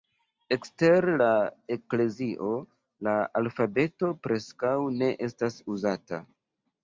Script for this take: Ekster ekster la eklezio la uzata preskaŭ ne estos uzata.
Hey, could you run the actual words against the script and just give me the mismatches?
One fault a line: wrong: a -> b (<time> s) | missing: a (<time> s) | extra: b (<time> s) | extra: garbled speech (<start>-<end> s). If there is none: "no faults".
missing: ekster (1.1 s)
wrong: uzata -> alfabeto (3.4 s)
wrong: estos -> estas (5.3 s)